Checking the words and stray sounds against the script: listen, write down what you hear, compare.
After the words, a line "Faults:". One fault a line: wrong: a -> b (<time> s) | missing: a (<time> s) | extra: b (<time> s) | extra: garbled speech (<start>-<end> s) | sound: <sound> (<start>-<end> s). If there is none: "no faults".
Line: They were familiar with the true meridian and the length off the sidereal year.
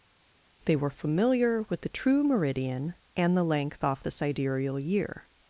They were familiar with the true meridian and the length off the sidereal year.
Faults:
no faults